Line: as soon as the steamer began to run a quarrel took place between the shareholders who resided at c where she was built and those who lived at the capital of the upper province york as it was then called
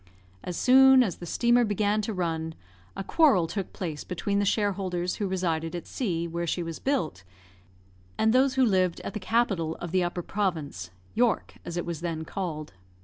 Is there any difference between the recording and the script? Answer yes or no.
no